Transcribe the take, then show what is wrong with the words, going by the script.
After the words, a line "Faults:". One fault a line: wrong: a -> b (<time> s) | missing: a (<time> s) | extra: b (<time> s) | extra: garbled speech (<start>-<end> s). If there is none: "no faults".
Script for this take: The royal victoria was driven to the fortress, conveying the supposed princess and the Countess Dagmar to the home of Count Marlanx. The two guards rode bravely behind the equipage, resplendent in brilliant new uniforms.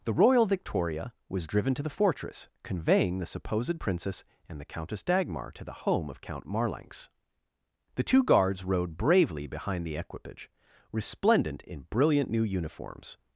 The royal victoria was driven to the fortress, conveying the supposed princess and the Countess Dagmar to the home of Count Marlanx. The two guards rode bravely behind the equipage, resplendent in brilliant new uniforms.
Faults:
no faults